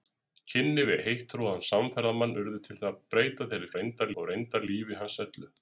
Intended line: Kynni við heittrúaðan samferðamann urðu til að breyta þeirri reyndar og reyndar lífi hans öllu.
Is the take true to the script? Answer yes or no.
yes